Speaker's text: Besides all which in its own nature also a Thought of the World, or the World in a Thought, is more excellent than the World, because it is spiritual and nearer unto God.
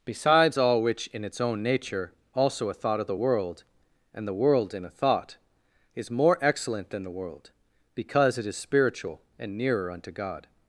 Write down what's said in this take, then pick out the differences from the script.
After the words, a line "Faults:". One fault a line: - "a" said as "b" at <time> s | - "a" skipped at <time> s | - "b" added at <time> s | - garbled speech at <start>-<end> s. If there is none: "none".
Besides all which in its own nature also a Thought of the World, and the World in a Thought, is more excellent than the World, because it is spiritual and nearer unto God.
Faults:
- "or" said as "and" at 4.1 s